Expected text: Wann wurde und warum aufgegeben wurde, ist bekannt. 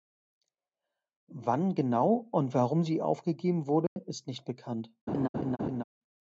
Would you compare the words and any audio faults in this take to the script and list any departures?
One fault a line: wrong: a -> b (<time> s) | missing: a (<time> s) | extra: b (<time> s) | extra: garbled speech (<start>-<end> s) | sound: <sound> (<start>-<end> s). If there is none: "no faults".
wrong: wurde -> genau (1.7 s)
extra: sie (2.8 s)
sound: dropout (3.9-4.0 s)
extra: nicht (4.3 s)
sound: laugh (5.1-5.8 s)